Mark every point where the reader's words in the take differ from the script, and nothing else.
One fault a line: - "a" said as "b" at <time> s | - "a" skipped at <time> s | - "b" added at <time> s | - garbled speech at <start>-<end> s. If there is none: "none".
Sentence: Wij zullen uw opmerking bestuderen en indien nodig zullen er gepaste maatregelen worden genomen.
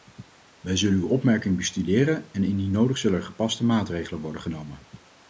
none